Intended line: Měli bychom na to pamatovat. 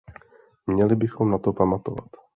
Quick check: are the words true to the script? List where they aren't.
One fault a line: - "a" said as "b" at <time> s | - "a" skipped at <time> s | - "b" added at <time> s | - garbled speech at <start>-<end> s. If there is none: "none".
none